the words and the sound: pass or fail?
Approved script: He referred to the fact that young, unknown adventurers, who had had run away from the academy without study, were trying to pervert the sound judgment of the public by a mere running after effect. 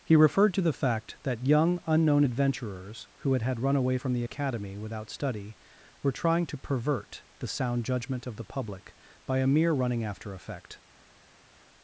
pass